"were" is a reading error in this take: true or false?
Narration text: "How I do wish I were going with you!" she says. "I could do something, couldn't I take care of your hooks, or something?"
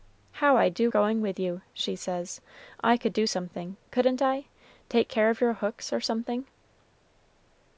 true